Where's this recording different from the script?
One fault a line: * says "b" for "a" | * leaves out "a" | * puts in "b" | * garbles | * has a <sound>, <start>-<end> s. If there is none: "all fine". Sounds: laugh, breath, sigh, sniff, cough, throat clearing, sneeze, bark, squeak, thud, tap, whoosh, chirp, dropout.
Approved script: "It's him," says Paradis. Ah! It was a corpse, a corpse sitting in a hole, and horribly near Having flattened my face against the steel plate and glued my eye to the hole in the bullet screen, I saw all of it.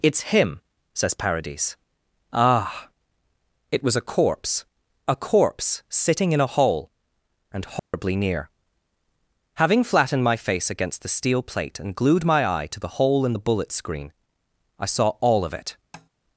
* has a dropout, 7.8-7.9 s
* has a tap, 15.9-16.1 s